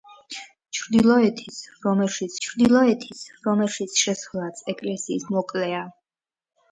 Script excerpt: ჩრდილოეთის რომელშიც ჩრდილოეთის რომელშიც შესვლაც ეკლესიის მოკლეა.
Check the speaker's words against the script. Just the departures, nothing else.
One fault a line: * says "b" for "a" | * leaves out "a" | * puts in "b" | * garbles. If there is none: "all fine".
all fine